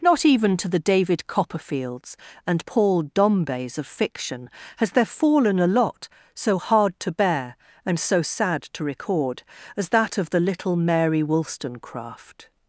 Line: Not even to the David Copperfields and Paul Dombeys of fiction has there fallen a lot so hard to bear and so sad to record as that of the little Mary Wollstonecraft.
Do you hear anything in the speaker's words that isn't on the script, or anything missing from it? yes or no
no